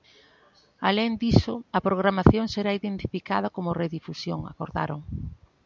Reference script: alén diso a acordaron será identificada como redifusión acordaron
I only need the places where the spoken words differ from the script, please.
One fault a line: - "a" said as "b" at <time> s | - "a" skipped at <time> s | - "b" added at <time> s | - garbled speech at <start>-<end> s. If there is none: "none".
- "acordaron" said as "programación" at 1.9 s